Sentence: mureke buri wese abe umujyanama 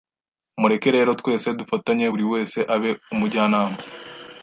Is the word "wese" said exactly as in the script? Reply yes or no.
yes